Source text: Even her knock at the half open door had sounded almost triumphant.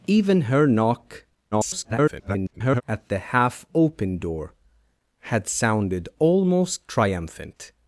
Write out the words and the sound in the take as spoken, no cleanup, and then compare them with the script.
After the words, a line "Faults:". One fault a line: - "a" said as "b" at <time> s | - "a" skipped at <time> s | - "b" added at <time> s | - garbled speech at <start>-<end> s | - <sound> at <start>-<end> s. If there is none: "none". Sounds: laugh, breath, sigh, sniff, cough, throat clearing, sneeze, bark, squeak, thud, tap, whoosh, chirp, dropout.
Even her knock [garbled] at the half open door had sounded almost triumphant.
Faults:
- garbled speech at 1.5-2.8 s